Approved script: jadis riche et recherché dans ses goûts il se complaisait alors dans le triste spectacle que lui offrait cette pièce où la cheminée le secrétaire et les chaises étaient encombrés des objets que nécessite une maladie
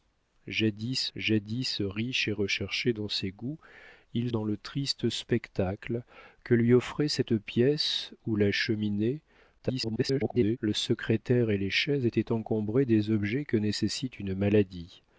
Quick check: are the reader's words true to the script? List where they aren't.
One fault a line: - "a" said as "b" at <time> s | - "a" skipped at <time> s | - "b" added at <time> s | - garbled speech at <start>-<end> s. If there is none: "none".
- "jadis" added at 1.2 s
- "se complaisait alors" skipped at 4.3 s
- garbled speech at 9.6-10.6 s